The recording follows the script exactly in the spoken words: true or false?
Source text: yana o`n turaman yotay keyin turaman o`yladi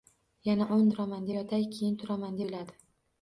true